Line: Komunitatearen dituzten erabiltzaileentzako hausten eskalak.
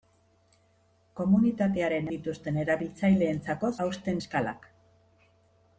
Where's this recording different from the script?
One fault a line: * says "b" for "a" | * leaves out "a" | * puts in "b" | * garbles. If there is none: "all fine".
all fine